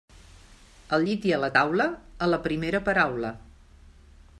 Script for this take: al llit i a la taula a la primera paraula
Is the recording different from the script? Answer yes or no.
no